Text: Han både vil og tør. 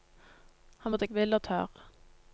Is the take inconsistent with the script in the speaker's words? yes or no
no